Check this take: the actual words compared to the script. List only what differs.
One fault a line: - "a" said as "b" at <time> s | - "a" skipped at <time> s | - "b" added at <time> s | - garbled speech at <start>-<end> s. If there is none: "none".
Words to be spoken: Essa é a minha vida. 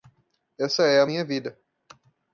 none